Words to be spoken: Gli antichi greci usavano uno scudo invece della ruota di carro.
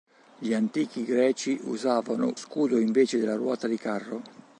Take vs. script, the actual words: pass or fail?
fail